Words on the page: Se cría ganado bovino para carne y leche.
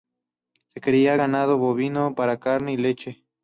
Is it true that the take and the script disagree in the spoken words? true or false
false